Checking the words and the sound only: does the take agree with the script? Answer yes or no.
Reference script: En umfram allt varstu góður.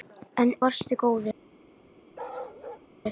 no